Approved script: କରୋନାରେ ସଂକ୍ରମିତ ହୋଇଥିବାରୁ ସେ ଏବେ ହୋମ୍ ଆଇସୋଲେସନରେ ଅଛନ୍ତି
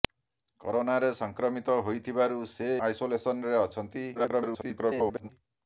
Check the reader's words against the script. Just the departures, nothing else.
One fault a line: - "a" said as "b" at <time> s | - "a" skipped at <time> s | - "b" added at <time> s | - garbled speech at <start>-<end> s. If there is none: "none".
- "ଏବେ ହୋମ୍" skipped at 2.7 s
- garbled speech at 4.1-5.3 s